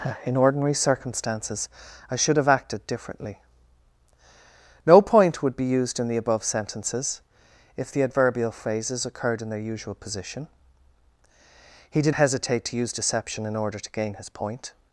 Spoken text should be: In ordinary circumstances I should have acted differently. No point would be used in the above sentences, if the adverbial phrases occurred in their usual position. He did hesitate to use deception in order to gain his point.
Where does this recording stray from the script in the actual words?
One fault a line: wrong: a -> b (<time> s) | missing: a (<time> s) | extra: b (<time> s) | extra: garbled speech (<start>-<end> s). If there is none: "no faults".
no faults